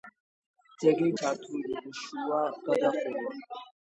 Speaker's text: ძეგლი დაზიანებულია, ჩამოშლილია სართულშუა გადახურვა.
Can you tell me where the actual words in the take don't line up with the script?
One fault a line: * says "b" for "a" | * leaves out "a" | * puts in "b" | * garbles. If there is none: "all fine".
* leaves out "დაზიანებულია ჩამოშლილია"